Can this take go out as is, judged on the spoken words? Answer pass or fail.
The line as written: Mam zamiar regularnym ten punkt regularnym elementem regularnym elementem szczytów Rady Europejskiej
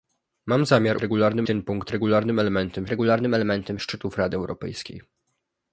pass